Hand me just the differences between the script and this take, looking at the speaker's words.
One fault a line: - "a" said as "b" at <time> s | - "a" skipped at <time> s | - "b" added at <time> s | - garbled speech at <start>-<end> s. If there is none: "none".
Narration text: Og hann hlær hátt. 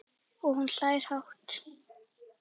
- "hann" said as "hún" at 0.6 s